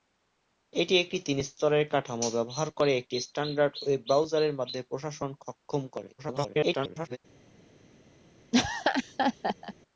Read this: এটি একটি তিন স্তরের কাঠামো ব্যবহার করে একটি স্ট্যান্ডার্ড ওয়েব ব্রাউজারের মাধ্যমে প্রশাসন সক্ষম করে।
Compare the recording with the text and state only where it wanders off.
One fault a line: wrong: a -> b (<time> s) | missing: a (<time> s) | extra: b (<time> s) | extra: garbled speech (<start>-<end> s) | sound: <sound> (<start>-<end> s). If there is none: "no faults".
extra: garbled speech (6.2-7.2 s)
sound: laugh (8.5-9.7 s)